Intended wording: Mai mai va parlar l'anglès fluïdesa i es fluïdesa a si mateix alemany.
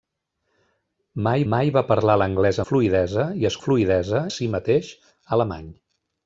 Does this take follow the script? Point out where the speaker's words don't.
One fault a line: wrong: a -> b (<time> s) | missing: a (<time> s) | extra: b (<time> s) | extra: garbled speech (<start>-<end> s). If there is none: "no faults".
no faults